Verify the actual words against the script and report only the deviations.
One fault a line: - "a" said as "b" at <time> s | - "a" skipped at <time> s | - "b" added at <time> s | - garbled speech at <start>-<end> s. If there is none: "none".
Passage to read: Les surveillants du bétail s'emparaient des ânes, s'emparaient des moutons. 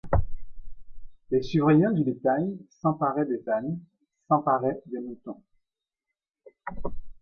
none